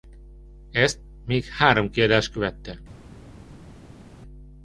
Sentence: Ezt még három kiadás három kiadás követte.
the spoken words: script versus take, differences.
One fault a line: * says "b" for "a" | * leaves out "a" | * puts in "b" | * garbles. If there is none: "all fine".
* leaves out "három kiadás"